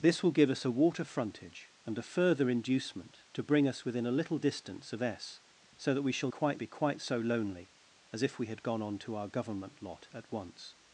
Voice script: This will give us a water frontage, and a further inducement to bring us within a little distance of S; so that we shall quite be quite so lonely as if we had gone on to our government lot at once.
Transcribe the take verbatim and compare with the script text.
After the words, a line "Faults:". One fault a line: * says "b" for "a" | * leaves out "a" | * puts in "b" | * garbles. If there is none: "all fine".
This will give us a water frontage, and a further inducement to bring us within a little distance of S; so that we shall quite be quite so lonely as if we had gone on to our government lot at once.
Faults:
all fine